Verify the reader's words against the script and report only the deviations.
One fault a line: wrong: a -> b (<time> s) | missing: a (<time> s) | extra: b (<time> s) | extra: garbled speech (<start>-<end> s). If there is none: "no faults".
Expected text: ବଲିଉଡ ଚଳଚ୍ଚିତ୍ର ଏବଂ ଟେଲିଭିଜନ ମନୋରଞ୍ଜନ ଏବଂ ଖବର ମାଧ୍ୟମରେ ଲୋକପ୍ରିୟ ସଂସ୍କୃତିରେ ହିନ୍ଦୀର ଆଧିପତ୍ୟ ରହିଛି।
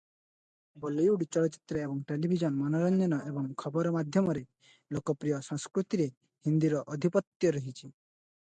no faults